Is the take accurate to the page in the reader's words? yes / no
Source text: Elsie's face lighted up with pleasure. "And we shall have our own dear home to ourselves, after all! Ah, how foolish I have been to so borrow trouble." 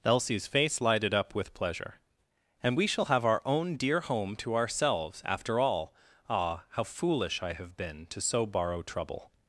yes